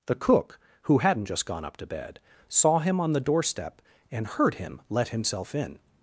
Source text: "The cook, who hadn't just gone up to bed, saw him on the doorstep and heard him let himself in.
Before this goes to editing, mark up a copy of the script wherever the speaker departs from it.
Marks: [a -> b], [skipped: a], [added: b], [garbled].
"The cook, who hadn't just gone up to bed, saw him on the doorstep and heard him let himself in.